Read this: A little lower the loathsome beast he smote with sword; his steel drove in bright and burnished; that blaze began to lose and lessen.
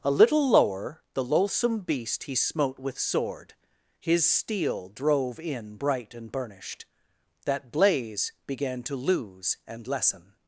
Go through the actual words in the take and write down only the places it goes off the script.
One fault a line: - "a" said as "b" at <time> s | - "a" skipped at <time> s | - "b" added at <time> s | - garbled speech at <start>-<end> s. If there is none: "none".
none